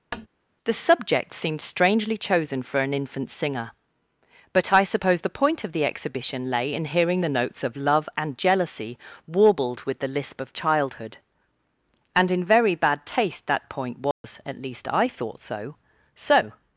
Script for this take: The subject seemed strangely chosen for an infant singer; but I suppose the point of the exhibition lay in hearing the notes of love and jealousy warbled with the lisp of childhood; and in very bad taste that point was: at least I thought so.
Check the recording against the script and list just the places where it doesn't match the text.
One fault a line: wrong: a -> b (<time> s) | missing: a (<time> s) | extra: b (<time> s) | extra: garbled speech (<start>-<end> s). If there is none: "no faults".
extra: so (16.2 s)